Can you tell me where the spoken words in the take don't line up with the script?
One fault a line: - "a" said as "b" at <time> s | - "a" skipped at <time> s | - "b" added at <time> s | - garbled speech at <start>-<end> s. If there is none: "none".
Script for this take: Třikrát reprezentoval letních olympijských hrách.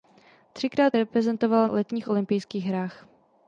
none